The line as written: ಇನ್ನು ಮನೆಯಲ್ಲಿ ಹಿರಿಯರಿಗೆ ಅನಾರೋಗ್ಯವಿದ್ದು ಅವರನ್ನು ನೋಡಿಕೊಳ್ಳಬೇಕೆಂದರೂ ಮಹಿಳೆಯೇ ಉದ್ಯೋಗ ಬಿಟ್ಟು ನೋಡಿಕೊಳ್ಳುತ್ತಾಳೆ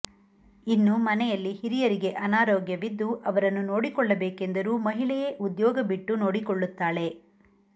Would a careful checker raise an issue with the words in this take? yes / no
no